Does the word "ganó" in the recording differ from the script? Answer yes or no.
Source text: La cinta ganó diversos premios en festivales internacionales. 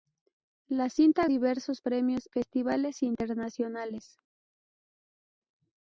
yes